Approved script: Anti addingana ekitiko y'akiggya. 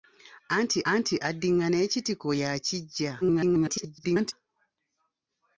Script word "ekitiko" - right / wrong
right